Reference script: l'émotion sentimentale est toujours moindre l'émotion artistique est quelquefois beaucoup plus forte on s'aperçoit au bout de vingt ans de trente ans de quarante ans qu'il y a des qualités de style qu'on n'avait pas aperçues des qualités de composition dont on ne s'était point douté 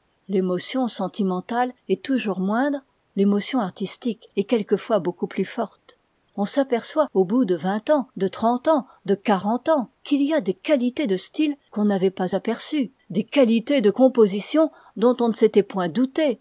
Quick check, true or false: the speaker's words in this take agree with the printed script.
true